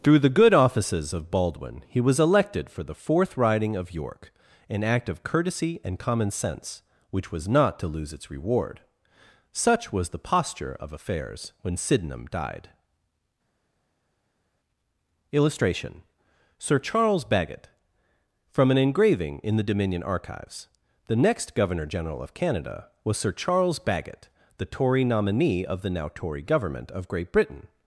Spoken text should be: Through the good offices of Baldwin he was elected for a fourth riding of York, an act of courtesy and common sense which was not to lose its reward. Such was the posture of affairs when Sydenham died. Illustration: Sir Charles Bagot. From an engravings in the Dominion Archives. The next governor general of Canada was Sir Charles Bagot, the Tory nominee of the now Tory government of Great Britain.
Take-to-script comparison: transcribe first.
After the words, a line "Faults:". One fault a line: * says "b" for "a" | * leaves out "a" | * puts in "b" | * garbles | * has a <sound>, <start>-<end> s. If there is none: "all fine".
Through the good offices of Baldwin he was elected for the fourth riding of York, an act of courtesy and common sense which was not to lose its reward. Such was the posture of affairs when Sydenham died. Illustration: Sir Charles Bagot. From an engraving in the Dominion Archives. The next governor general of Canada was Sir Charles Bagot, the Tory nominee of the now Tory government of Great Britain.
Faults:
* says "the" for "a"
* says "engraving" for "engravings"